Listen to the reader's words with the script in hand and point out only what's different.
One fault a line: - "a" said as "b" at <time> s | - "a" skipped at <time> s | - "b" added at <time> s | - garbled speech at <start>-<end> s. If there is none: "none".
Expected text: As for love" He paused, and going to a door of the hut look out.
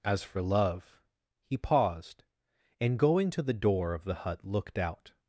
- "a" said as "the" at 3.4 s
- "look" said as "looked" at 4.4 s